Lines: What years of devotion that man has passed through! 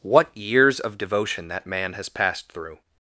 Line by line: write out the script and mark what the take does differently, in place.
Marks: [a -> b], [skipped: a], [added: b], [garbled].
What years of devotion that man has passed through!